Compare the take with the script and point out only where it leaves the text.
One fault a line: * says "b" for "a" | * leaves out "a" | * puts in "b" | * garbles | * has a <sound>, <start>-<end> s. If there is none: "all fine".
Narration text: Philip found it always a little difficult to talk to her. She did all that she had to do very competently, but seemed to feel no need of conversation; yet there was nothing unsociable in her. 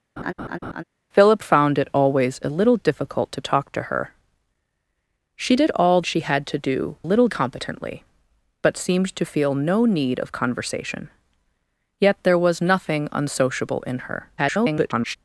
* has a laugh, 0.2-0.8 s
* leaves out "that"
* says "little" for "very"
* garbles